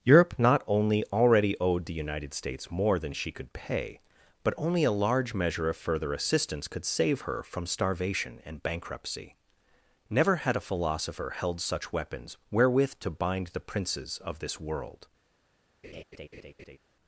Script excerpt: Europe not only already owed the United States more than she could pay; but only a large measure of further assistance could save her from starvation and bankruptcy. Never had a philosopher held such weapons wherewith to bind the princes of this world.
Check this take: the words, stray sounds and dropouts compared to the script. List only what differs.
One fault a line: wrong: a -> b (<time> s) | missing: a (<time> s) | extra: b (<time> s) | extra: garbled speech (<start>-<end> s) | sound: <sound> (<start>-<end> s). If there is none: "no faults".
sound: laugh (15.8-16.8 s)